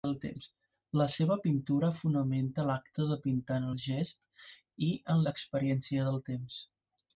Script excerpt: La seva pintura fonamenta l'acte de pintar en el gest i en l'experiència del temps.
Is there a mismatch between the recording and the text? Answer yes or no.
no